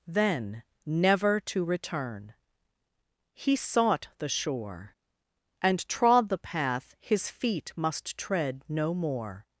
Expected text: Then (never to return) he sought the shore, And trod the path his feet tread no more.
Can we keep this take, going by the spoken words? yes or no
no